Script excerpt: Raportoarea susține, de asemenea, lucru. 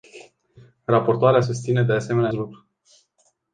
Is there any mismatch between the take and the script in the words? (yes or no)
no